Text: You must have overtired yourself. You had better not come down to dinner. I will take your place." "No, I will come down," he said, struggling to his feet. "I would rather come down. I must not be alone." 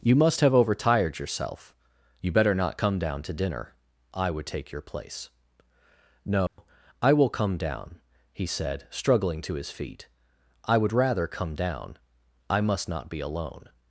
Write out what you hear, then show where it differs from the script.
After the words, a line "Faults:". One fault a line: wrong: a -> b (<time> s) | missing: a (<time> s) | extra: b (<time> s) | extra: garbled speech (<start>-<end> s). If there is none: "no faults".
You must have overtired yourself. You better not come down to dinner. I would take your place." "No, I will come down," he said, struggling to his feet. "I would rather come down. I must not be alone."
Faults:
missing: had (2.3 s)
wrong: will -> would (4.3 s)